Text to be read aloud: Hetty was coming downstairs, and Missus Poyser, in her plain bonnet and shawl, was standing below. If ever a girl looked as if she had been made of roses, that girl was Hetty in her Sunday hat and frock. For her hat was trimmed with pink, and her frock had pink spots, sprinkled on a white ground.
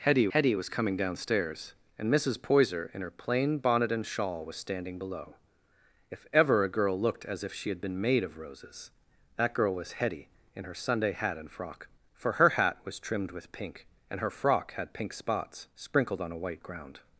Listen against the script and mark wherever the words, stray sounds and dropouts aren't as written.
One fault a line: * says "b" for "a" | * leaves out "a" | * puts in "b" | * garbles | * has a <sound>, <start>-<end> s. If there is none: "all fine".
* puts in "hetty"